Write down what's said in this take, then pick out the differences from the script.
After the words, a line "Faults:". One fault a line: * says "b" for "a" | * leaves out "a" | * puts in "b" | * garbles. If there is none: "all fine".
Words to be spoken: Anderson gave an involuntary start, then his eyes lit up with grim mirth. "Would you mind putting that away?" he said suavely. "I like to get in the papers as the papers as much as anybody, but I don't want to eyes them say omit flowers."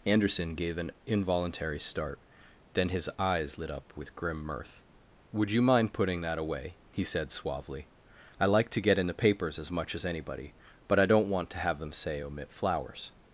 Anderson gave an involuntary start, then his eyes lit up with grim mirth. "Would you mind putting that away?" he said suavely. "I like to get in the papers as much as anybody, but I don't want to have them say omit flowers."
Faults:
* leaves out "the papers as"
* says "have" for "eyes"